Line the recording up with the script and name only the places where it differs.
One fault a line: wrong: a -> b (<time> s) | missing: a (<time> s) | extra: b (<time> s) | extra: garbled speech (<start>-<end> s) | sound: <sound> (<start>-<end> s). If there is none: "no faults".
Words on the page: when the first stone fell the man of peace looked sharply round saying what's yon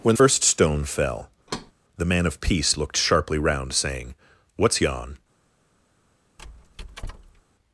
missing: the (0.2 s)
sound: thud (1.5-1.7 s)
sound: squeak (6.4-7.4 s)